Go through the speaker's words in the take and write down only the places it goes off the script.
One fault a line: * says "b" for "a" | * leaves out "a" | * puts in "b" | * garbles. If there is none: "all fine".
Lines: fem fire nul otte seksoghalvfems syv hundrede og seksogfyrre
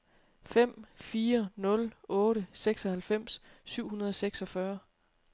all fine